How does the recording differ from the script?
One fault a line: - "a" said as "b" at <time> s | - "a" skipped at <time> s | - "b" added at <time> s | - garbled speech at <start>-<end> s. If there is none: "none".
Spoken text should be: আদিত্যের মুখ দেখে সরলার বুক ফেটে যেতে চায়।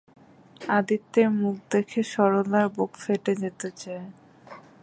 none